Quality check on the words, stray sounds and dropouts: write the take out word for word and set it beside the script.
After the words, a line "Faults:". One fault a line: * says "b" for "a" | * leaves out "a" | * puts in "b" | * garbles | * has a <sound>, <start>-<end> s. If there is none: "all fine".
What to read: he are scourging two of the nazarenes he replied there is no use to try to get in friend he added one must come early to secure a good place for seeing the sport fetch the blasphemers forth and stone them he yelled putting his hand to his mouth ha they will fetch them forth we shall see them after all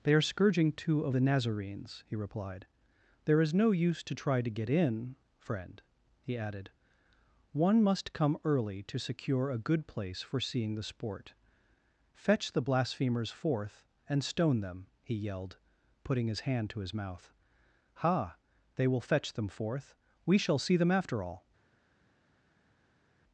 they are scourging two of the nazarenes he replied there is no use to try to get in friend he added one must come early to secure a good place for seeing the sport fetch the blasphemers forth and stone them he yelled putting his hand to his mouth ha they will fetch them forth we shall see them after all
Faults:
* says "they" for "he"